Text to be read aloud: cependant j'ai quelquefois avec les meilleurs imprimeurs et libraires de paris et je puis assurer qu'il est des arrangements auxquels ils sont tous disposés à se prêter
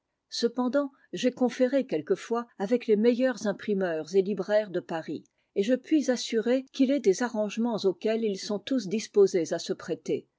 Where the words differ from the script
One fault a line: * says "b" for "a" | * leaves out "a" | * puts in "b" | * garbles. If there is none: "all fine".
* puts in "conféré"